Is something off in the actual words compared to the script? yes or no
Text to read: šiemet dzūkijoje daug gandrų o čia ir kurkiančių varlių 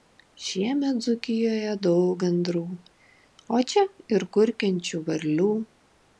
no